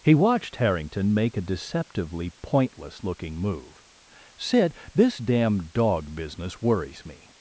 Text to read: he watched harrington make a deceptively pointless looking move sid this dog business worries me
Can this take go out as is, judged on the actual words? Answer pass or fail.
fail